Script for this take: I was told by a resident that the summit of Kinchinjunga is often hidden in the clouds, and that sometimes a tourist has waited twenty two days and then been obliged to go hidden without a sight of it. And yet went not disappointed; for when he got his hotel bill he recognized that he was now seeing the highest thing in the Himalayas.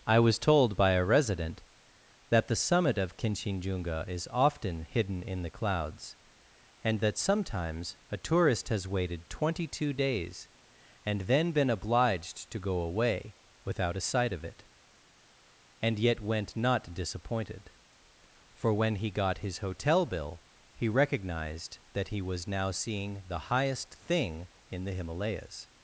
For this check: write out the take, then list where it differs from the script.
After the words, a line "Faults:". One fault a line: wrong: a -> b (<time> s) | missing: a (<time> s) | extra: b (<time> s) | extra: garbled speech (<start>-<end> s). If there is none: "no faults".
I was told by a resident that the summit of Kinchinjunga is often hidden in the clouds, and that sometimes a tourist has waited twenty two days and then been obliged to go away without a sight of it. And yet went not disappointed; for when he got his hotel bill he recognized that he was now seeing the highest thing in the Himalayas.
Faults:
wrong: hidden -> away (12.8 s)